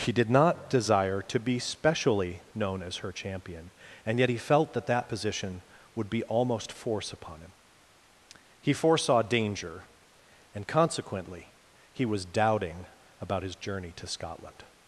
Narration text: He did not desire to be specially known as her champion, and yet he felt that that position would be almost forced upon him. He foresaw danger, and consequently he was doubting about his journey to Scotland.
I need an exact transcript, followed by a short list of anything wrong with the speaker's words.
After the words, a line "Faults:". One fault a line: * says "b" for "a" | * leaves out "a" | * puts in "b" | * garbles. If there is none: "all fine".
He did not desire to be specially known as her champion, and yet he felt that that position would be almost force upon him. He foresaw danger, and consequently he was doubting about his journey to Scotland.
Faults:
* says "force" for "forced"